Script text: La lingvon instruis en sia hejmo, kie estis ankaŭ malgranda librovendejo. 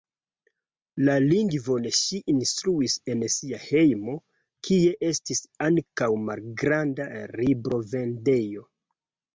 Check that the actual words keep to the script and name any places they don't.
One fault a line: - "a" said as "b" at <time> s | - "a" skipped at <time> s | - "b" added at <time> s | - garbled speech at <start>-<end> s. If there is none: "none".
- "ŝi" added at 2.0 s